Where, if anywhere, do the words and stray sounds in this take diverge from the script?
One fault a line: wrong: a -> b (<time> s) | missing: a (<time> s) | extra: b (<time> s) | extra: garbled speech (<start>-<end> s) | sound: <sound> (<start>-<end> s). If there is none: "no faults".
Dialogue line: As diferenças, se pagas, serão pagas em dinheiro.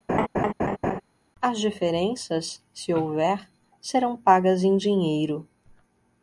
sound: laugh (0.1-1.0 s)
wrong: pagas -> houver (2.9 s)